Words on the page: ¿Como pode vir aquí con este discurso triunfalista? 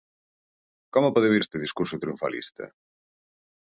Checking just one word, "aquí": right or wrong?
wrong